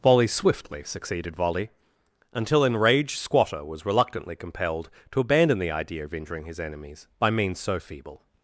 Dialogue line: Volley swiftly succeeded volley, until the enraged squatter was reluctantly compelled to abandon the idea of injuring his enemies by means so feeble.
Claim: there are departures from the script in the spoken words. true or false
true